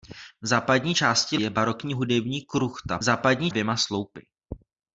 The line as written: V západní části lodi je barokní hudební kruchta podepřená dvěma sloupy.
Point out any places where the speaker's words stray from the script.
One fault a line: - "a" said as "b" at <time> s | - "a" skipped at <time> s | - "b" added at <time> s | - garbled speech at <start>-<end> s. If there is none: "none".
- "lodi" skipped at 1.4 s
- "podepřená" said as "západní" at 3.0 s